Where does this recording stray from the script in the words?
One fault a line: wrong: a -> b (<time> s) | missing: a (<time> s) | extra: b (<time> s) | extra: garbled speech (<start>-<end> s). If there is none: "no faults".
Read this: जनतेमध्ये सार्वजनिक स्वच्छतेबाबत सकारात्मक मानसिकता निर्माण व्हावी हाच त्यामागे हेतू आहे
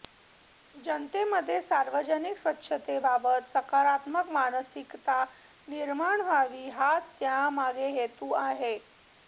no faults